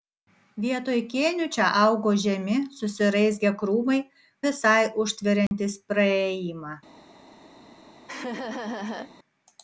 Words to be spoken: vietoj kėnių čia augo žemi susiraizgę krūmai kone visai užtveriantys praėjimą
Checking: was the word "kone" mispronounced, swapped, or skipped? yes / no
yes